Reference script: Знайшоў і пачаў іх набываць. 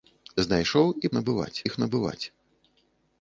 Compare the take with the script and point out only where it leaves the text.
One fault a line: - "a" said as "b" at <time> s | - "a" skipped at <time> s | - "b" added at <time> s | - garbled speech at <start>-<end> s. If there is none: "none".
- "пачаў" said as "набываць" at 1.2 s